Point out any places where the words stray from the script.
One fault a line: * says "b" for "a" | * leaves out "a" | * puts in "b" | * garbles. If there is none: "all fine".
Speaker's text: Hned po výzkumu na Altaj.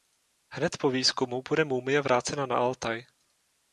* puts in "bude mumie vrácena"